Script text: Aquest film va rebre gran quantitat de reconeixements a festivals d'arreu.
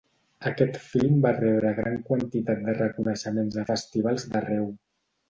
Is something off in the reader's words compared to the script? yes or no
no